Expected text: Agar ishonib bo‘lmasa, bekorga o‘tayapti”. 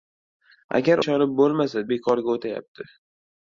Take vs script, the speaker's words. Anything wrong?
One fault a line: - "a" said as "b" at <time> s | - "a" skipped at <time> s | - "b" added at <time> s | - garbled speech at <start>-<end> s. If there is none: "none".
none